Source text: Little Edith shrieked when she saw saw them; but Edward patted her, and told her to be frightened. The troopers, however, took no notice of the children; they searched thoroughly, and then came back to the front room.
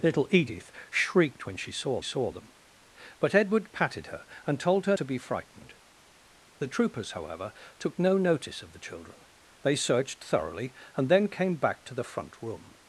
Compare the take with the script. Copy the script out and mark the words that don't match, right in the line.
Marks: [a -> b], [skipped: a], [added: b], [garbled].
Little Edith shrieked when she saw saw them; but Edward patted her, and told her to be frightened. The troopers, however, took no notice of the children; they searched thoroughly, and then came back to the front room.